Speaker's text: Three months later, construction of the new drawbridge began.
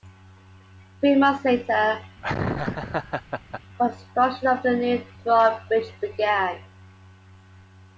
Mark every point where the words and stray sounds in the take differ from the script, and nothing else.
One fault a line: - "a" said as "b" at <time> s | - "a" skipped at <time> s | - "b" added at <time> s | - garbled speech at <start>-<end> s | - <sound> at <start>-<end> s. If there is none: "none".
- laugh at 2.2-3.6 s